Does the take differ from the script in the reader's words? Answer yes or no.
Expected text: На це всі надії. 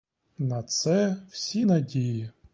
no